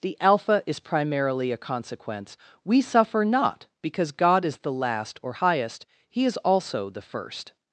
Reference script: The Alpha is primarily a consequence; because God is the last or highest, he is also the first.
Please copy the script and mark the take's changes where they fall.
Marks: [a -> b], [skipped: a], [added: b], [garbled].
The Alpha is primarily a consequence; [added: we suffer not] because God is the last or highest, he is also the first.